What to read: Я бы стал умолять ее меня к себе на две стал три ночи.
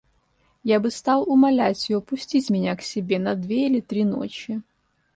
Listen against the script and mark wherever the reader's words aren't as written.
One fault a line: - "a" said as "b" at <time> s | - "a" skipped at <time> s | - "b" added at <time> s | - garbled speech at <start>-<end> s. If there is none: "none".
- "пустить" added at 2.0 s
- "стал" said as "или" at 3.7 s